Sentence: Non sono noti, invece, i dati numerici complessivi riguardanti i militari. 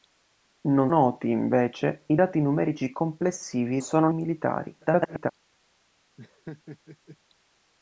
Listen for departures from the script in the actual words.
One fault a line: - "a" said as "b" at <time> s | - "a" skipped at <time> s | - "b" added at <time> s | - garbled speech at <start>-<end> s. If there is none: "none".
- "sono" skipped at 0.9 s
- "riguardanti" said as "sono" at 3.8 s
- garbled speech at 4.8-5.3 s